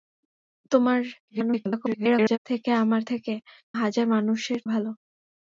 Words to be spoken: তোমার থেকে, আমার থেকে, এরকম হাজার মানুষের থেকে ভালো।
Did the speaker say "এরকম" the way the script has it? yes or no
no